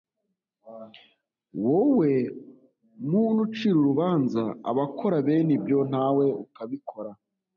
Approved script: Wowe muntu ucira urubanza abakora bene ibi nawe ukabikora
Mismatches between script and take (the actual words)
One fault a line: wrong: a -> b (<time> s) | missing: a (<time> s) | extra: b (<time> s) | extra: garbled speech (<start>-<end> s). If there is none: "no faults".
wrong: ibi -> ibyo (5.6 s)